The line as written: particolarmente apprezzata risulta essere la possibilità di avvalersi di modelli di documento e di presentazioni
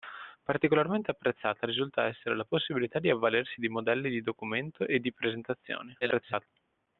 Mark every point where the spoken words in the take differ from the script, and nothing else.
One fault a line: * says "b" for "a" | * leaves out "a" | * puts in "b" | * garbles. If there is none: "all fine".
* garbles